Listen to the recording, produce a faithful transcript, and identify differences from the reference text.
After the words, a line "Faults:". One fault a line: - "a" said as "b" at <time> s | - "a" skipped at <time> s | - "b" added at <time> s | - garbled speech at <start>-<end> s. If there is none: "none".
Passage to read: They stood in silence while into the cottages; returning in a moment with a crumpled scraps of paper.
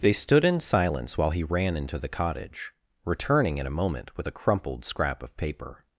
They stood in silence while he ran into the cottage; returning in a moment with a crumpled scrap of paper.
Faults:
- "he ran" added at 1.3 s
- "cottages" said as "cottage" at 2.1 s
- "scraps" said as "scrap" at 4.9 s